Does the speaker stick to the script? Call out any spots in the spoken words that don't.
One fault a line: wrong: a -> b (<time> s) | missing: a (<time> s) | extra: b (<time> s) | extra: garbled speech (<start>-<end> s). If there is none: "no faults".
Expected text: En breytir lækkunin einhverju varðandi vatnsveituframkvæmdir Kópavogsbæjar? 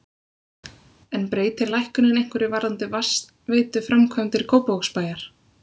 no faults